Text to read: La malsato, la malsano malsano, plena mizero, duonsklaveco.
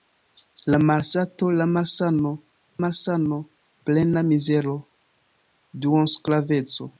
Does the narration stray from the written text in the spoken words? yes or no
no